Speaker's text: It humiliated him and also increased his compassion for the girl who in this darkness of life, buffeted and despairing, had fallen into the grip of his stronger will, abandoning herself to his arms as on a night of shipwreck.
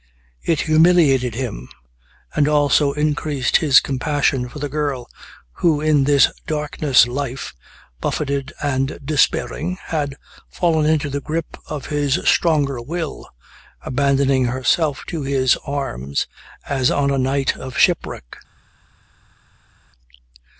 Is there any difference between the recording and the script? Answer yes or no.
yes